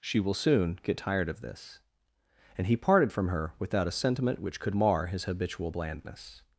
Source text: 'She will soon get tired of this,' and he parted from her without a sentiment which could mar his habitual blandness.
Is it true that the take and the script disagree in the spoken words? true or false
false